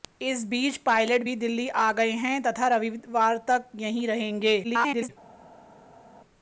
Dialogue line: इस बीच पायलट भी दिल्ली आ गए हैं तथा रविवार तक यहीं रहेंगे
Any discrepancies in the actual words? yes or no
yes